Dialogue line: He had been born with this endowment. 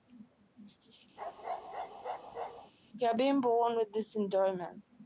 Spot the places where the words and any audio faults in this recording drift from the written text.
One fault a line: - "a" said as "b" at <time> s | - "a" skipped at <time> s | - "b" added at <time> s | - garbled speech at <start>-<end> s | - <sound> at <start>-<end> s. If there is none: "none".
- bark at 1.2-2.7 s